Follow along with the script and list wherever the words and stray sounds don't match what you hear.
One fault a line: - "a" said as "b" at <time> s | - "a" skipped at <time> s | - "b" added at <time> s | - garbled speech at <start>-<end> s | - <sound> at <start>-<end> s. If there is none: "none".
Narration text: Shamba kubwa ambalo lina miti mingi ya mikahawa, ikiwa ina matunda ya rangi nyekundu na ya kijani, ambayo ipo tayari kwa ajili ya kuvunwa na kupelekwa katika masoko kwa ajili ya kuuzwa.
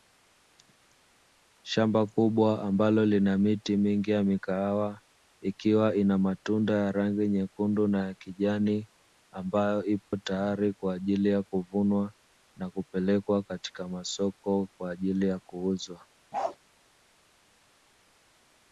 - dropout at 10.0-10.1 s
- bark at 16.3-16.6 s